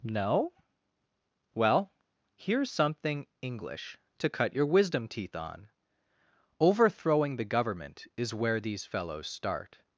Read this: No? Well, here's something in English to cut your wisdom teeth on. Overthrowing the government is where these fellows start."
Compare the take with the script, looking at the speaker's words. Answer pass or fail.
fail